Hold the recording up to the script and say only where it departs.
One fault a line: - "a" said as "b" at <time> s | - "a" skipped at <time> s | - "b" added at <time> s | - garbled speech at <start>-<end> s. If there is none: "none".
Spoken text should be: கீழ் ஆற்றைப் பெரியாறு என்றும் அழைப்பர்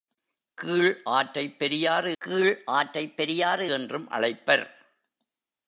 - "கீழ் ஆற்றைப் பெரியாறு" added at 2.2 s